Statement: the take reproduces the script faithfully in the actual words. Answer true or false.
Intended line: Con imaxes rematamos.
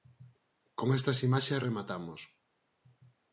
false